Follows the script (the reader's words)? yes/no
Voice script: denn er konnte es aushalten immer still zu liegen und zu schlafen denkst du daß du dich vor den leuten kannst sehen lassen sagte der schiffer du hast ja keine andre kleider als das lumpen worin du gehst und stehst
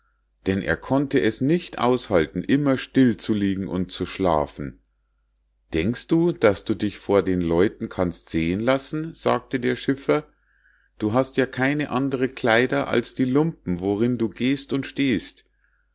no